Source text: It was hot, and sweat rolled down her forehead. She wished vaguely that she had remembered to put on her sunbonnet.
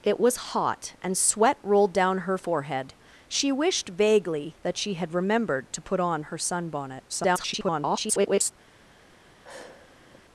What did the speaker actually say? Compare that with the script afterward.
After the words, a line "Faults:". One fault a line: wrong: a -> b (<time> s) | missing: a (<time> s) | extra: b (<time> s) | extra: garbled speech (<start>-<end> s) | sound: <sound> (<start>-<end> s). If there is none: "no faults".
It was hot, and sweat rolled down her forehead. She wished vaguely that she had remembered to put on her sunbonnet. [garbled]
Faults:
extra: garbled speech (7.1-8.5 s)
sound: sigh (9.4-10.2 s)